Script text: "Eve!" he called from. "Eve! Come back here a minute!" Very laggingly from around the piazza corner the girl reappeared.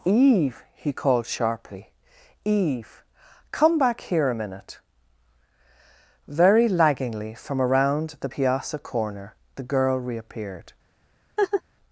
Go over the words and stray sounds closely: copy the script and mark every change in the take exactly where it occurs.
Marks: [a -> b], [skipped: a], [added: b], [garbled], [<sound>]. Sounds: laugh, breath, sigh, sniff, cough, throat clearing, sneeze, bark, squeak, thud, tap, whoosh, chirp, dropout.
"Eve!" he called [from. -> sharply] "Eve! Come back here a minute!" Very laggingly from around the piazza corner the girl reappeared. [laugh]